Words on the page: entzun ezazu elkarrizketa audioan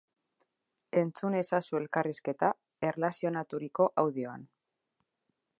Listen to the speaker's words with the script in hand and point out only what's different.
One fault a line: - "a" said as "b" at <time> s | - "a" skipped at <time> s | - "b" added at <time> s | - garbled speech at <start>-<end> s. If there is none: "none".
- "erlazionaturiko" added at 2.9 s